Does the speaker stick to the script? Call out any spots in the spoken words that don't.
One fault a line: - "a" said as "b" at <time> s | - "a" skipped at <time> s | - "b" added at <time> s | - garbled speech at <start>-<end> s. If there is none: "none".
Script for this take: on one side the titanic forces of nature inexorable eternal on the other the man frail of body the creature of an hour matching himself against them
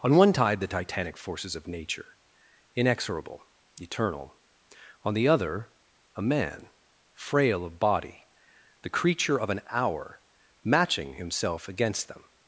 - "side" said as "tide" at 0.3 s
- "the" said as "a" at 6.2 s